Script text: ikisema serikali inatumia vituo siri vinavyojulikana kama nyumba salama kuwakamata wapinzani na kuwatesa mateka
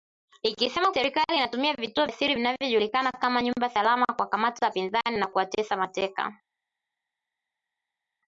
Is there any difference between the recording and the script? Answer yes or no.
no